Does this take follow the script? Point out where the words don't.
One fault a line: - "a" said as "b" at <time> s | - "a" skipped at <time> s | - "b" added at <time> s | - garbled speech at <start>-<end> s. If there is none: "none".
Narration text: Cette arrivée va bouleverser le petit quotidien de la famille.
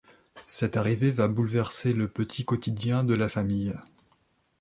none